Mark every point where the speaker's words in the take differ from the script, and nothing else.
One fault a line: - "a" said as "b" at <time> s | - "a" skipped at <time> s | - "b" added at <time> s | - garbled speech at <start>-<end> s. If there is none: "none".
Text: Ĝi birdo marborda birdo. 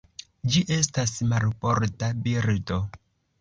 - "birdo" said as "estas" at 0.8 s